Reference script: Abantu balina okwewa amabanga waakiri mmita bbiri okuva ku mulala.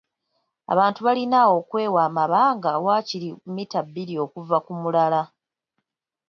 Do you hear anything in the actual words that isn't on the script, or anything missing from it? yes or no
no